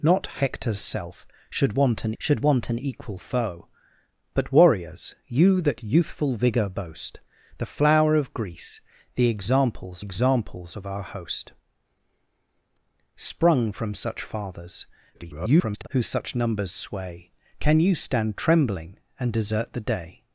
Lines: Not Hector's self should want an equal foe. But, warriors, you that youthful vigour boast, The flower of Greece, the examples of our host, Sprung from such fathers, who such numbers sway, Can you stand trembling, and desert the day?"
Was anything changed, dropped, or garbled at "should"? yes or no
no